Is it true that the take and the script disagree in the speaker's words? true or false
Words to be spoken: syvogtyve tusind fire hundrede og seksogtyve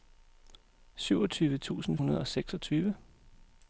true